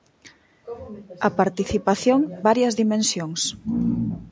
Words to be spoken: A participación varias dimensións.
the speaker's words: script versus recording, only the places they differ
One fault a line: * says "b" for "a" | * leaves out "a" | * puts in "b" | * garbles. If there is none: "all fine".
all fine